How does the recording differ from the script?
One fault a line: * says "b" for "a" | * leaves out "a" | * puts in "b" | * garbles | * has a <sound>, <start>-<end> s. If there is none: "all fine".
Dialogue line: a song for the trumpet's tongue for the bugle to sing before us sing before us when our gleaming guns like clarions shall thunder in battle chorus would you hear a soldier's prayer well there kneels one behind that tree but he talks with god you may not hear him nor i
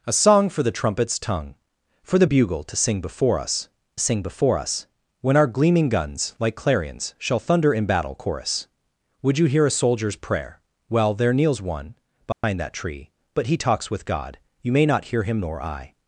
* has a dropout, 12.3-12.4 s